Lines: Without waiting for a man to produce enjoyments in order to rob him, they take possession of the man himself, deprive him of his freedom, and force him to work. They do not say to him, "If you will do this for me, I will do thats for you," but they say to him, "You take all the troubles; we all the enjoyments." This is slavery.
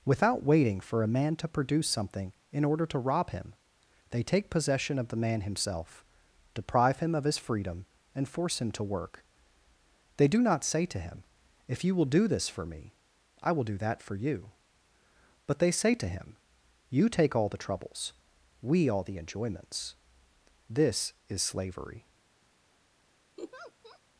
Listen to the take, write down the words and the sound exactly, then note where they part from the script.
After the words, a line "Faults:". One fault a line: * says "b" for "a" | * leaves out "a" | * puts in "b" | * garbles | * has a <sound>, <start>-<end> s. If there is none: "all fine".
Without waiting for a man to produce something in order to rob him, they take possession of the man himself, deprive him of his freedom, and force him to work. They do not say to him, "If you will do this for me, I will do that for you," but they say to him, "You take all the troubles; we all the enjoyments." This is slavery.
Faults:
* says "something" for "enjoyments"
* says "that" for "thats"
* has a laugh, 23.4-24.0 s